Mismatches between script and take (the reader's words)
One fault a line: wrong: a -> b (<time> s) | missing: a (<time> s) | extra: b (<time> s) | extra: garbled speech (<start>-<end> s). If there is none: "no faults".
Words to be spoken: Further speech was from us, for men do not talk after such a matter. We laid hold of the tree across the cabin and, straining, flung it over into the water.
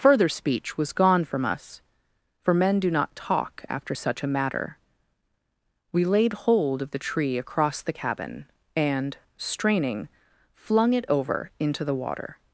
extra: gone (0.9 s)